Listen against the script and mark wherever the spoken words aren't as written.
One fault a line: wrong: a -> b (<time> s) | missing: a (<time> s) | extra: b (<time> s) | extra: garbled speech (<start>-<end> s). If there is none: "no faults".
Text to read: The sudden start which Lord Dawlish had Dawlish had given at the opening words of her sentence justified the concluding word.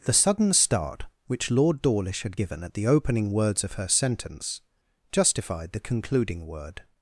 missing: Dawlish had (2.4 s)